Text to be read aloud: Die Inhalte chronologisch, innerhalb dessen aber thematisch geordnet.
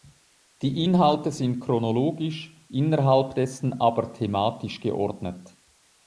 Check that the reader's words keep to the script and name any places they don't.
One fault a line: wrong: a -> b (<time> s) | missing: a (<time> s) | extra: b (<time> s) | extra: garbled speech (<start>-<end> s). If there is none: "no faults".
extra: sind (1.3 s)